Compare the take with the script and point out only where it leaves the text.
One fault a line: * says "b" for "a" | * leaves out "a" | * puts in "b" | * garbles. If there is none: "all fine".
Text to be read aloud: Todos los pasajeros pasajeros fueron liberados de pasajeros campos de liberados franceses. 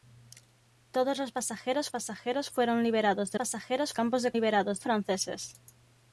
all fine